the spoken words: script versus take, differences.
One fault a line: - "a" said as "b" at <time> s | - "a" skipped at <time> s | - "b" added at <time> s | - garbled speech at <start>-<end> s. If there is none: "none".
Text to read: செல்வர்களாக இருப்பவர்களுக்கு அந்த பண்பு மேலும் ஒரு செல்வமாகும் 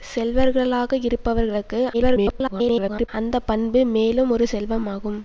- garbled speech at 1.9-3.1 s